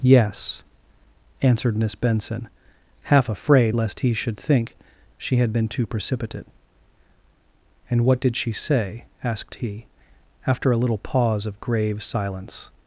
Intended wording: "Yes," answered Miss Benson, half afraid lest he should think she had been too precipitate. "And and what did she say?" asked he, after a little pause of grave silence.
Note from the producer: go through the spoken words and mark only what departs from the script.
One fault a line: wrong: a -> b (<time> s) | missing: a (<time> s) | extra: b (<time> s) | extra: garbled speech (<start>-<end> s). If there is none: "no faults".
missing: and (8.1 s)